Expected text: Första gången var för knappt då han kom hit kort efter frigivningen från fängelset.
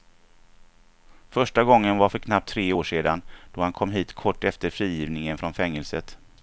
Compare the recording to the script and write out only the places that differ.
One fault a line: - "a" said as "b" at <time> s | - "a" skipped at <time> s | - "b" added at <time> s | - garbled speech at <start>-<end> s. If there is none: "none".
- "tre år sedan" added at 2.5 s